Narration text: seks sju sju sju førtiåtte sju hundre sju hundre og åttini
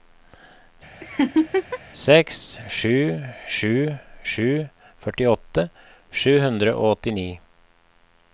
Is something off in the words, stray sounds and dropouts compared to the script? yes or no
yes